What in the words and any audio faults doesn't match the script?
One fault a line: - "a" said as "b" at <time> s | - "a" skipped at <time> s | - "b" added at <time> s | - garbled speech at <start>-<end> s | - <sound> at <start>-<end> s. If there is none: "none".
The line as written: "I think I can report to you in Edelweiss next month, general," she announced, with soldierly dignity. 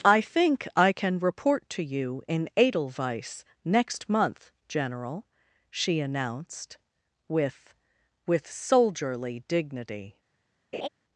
- "with" added at 8.3 s
- laugh at 10.7-10.9 s